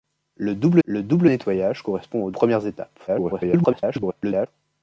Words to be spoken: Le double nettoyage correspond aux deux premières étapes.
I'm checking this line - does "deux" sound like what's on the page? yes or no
no